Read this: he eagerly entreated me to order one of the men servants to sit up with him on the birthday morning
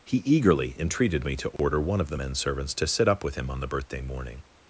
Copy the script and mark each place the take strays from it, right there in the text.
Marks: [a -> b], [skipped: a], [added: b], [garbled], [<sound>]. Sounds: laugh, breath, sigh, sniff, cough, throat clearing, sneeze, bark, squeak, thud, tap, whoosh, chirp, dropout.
he eagerly entreated me to order [dropout] one of the men servants to sit up with him on the birthday morning